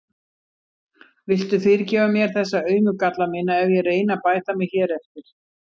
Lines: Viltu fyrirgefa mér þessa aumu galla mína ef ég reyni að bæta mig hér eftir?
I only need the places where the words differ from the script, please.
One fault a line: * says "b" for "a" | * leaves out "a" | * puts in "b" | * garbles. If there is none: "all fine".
all fine